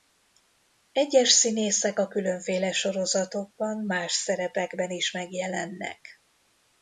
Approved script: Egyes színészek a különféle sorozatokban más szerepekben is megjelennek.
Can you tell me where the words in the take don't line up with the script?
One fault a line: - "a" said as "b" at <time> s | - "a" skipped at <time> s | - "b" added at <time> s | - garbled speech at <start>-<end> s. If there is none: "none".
none